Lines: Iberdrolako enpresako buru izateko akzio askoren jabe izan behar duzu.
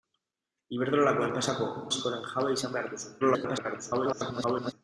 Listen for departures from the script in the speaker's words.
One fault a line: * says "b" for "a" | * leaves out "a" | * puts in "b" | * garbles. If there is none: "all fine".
* leaves out "buru izateko akzio"
* garbles